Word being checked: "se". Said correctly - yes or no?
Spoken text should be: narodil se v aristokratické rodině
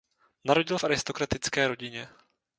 no